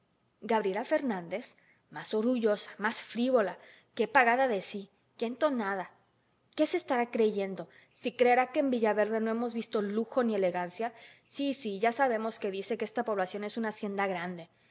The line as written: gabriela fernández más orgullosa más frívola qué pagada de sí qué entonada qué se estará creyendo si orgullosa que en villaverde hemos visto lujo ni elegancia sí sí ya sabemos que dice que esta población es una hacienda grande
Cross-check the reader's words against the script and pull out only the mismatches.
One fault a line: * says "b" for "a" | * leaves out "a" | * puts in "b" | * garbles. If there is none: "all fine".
* says "creerá" for "orgullosa"
* puts in "no"